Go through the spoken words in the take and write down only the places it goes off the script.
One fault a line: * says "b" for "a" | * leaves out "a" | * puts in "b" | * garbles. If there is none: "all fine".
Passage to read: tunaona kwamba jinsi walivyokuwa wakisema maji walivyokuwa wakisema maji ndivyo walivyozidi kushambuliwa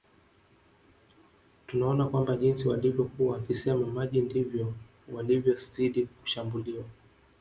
* leaves out "walivyokuwa wakisema maji"